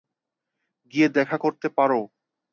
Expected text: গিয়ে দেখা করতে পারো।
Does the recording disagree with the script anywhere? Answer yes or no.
no